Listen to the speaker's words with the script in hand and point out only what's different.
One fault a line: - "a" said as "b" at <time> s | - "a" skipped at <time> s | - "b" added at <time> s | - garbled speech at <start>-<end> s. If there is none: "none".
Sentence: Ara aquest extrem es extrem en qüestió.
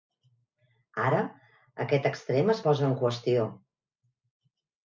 - "extrem" said as "posa" at 2.7 s